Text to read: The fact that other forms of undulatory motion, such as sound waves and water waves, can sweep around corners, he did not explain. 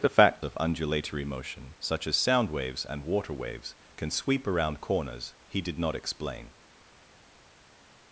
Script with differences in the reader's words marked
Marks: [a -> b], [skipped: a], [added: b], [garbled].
The fact [skipped: that other forms] of undulatory motion, such as sound waves and water waves, can sweep around corners, he did not explain.